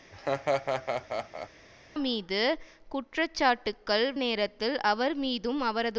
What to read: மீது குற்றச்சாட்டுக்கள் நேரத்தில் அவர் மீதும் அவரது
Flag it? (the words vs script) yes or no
no